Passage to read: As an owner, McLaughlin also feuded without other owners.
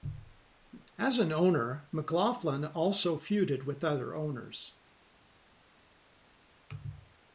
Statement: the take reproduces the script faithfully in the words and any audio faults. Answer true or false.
false